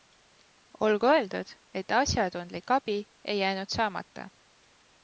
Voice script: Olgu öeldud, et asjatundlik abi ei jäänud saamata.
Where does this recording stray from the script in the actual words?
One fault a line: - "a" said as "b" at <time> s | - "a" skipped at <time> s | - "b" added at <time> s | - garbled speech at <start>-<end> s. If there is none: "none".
none